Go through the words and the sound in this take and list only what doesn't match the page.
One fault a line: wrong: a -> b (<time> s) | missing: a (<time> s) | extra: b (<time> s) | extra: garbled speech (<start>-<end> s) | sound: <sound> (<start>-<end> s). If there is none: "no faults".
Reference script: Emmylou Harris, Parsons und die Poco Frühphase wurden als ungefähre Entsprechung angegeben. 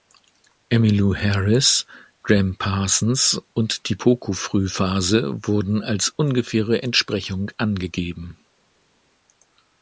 extra: Gram (2.2 s)